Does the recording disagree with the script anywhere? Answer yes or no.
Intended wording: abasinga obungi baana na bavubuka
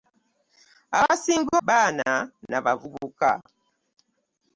yes